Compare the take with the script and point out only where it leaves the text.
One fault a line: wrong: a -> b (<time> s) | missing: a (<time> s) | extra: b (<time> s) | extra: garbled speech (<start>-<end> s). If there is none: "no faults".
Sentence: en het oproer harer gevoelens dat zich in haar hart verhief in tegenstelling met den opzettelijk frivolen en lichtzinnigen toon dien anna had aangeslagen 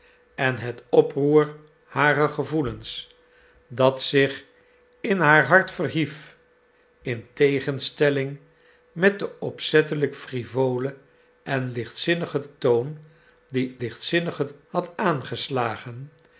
wrong: anna -> lichtzinnigen (13.8 s)